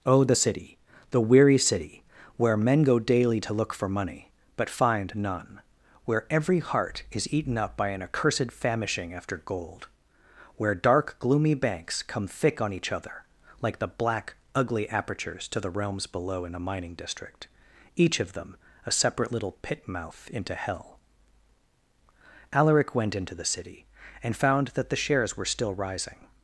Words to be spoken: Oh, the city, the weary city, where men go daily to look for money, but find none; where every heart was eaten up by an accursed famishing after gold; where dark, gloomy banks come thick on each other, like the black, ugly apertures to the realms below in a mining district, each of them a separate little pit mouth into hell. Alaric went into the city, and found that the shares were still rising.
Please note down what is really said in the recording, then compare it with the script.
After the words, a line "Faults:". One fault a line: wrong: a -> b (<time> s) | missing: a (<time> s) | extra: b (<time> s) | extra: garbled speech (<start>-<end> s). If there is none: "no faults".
Oh, the city, the weary city, where men go daily to look for money, but find none; where every heart is eaten up by an accursed famishing after gold; where dark, gloomy banks come thick on each other, like the black, ugly apertures to the realms below in a mining district, each of them a separate little pit mouth into hell. Alaric went into the city, and found that the shares were still rising.
Faults:
wrong: was -> is (7.1 s)